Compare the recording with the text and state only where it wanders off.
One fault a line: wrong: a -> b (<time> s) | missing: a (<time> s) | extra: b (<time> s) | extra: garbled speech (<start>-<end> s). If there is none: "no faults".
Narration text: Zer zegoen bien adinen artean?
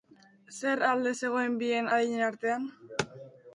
extra: alde (0.9 s)